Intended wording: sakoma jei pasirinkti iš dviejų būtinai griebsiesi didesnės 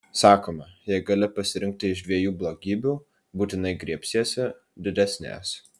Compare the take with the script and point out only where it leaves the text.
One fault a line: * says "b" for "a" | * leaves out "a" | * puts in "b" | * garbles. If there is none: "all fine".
* puts in "gali"
* puts in "blogybių"